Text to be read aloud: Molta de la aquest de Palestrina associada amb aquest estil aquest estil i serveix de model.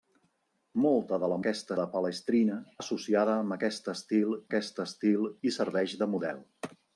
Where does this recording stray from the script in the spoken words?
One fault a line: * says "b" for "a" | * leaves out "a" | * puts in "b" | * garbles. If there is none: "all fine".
all fine